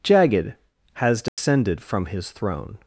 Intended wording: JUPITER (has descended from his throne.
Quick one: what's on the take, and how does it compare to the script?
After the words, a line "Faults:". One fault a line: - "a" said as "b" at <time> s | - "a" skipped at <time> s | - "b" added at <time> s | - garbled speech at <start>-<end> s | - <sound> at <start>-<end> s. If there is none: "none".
Jagged (has descended from his throne.
Faults:
- "JUPITER" said as "Jagged" at 0.0 s
- dropout at 1.3-1.4 s